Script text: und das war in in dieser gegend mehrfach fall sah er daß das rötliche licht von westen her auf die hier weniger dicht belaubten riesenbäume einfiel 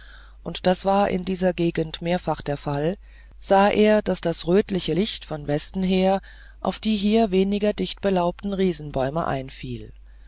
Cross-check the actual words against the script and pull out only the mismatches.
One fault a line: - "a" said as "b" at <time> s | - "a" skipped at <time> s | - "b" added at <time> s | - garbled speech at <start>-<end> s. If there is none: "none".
- "in" skipped at 1.2 s
- "der" added at 2.4 s